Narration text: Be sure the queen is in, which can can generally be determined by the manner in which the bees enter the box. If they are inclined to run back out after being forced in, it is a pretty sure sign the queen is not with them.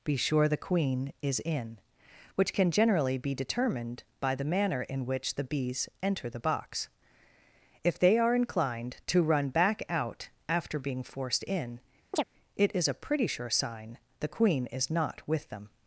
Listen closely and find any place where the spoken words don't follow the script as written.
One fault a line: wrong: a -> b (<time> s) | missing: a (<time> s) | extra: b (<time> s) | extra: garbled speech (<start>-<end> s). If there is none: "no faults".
missing: can (2.7 s)